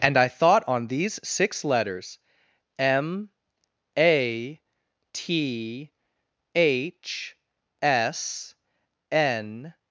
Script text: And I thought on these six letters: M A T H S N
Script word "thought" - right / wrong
right